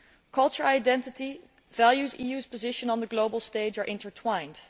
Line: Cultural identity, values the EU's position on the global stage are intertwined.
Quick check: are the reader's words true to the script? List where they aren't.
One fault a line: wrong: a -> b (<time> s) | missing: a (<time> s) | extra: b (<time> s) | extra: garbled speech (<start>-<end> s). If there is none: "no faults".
no faults